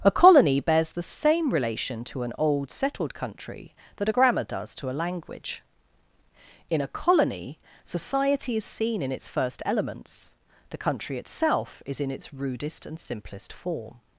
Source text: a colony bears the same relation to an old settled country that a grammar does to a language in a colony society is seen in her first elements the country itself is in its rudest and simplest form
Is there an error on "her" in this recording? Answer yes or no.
yes